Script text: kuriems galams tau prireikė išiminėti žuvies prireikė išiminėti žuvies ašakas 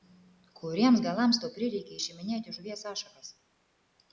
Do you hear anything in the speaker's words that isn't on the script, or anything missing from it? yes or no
yes